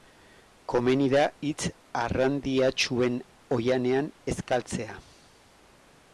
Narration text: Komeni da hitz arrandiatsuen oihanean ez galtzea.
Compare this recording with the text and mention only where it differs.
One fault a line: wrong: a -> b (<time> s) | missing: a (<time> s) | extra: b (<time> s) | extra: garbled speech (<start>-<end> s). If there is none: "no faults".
no faults